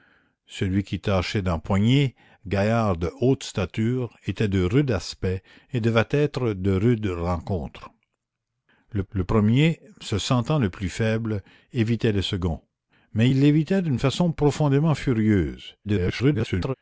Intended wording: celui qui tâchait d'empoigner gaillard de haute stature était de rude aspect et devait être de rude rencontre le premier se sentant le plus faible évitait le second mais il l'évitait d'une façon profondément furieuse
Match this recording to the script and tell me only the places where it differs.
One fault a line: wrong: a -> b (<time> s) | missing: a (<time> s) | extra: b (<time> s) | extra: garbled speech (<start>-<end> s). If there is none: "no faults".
extra: le (9.1 s)
extra: garbled speech (15.8-16.7 s)